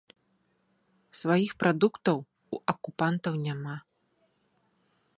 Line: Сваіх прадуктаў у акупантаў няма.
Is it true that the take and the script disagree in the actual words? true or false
false